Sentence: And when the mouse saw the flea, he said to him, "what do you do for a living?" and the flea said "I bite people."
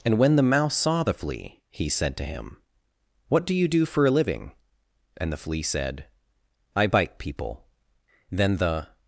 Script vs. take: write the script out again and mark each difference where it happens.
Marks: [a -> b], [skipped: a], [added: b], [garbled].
And when the mouse saw the flea, he said to him, "what do you do for a living?" and the flea said "I bite people." [added: Then the]